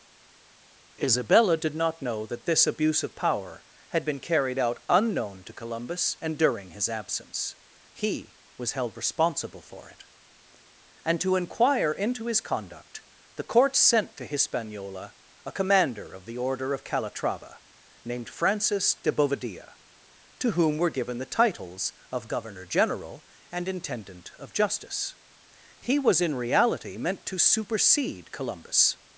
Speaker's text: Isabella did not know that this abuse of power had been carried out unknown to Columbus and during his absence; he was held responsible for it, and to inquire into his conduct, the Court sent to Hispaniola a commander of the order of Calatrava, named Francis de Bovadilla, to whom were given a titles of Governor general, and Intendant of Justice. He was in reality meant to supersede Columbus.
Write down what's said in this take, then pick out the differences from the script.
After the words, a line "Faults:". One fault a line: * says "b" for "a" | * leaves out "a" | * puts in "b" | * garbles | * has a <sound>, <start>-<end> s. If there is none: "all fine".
Isabella did not know that this abuse of power had been carried out unknown to Columbus and during his absence; he was held responsible for it, and to inquire into his conduct, the Court sent to Hispaniola a commander of the order of Calatrava, named Francis de Bovadilla, to whom were given the titles of Governor general, and Intendant of Justice. He was in reality meant to supersede Columbus.
Faults:
* says "the" for "a"